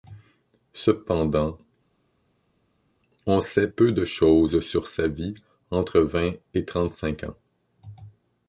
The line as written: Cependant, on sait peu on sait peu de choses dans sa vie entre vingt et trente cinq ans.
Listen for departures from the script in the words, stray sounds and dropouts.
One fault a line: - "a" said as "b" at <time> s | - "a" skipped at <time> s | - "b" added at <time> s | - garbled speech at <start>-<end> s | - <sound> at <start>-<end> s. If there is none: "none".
- "on sait peu" skipped at 3.9 s
- "dans" said as "sur" at 4.6 s